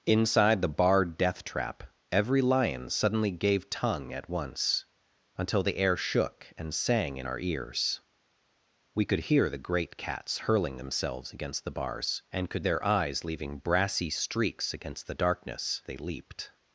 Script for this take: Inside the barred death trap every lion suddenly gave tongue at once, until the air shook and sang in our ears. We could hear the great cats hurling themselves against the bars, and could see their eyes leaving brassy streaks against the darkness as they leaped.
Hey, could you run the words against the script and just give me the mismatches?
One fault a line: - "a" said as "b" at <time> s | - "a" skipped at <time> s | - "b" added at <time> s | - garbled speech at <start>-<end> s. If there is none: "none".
- "see" skipped at 12.6 s
- "as" skipped at 15.8 s